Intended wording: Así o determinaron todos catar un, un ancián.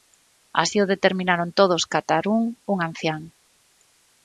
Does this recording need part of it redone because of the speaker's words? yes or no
no